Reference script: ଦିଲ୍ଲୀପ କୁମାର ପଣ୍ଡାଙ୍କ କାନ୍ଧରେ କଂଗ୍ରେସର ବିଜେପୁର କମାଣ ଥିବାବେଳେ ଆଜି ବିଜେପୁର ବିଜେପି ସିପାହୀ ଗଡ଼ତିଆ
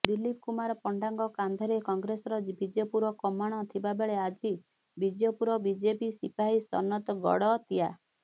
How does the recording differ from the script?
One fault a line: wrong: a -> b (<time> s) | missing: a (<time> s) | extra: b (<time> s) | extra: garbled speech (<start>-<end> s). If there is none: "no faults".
extra: ସନତ (6.7 s)